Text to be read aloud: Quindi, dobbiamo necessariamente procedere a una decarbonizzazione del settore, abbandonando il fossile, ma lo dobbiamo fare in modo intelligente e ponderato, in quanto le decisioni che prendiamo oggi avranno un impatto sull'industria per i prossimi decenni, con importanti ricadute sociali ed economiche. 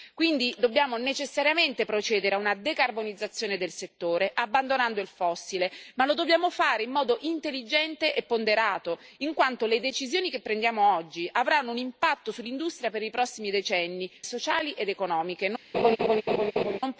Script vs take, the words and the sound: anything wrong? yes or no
yes